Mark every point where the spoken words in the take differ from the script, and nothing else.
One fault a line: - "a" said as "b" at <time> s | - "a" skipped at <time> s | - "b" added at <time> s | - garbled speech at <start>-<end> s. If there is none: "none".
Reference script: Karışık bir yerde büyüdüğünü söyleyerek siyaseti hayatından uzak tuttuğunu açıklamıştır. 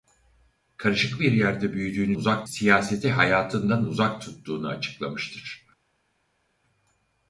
- "söyleyerek" said as "uzak" at 2.1 s